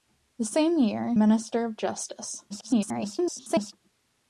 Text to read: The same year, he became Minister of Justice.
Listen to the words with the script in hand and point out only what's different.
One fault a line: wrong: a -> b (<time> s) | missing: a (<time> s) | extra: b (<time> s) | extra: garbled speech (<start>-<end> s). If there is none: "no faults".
missing: he became (1.1 s)
extra: garbled speech (2.5-3.7 s)